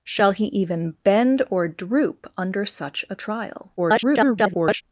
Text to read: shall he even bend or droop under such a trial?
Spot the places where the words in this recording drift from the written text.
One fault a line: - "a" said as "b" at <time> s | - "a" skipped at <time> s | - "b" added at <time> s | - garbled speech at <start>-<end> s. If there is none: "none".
- garbled speech at 3.8-4.8 s